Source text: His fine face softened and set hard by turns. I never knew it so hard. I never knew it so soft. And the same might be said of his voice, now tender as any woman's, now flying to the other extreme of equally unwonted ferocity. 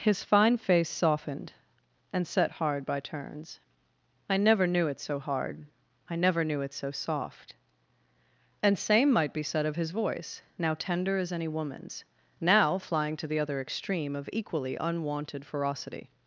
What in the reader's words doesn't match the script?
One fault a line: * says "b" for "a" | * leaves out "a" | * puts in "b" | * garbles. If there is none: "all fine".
* leaves out "the"